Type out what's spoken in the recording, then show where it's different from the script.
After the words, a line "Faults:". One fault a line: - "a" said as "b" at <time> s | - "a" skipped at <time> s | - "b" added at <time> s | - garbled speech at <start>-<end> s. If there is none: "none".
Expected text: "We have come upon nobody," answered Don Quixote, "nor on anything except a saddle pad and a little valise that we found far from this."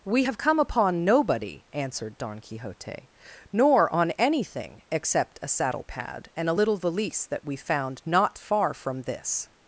"We have come upon nobody," answered Don Quixote, "nor on anything except a saddle pad and a little valise that we found not far from this."
Faults:
- "not" added at 8.0 s